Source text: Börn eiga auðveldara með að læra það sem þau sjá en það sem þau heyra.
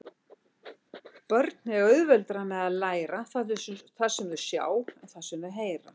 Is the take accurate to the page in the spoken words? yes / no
yes